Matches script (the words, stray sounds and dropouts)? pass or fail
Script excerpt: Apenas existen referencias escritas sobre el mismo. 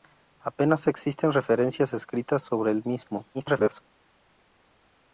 fail